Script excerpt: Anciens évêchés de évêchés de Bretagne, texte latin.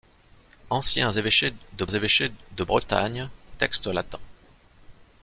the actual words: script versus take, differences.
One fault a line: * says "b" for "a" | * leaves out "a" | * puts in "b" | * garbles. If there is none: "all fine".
all fine